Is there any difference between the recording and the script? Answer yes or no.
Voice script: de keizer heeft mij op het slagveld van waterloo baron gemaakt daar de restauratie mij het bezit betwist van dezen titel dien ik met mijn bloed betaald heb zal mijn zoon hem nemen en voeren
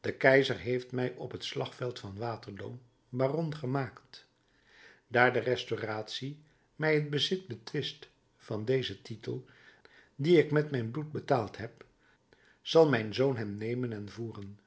no